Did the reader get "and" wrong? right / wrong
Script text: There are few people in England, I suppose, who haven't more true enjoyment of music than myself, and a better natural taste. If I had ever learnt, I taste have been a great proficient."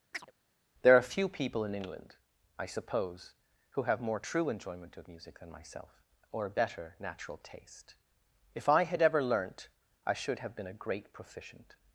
wrong